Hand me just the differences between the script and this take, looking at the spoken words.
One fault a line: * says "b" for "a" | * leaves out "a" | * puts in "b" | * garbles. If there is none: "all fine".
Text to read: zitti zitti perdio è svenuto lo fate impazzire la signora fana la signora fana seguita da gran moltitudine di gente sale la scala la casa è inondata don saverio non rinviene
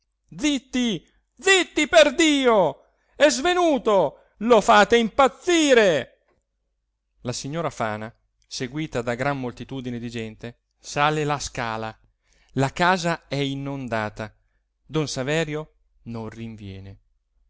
* leaves out "la signora fana"